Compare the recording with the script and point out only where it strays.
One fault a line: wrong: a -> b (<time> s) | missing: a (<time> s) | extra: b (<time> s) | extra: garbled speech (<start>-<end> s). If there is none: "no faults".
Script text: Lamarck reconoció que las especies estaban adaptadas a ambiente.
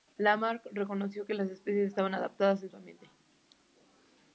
extra: su (2.7 s)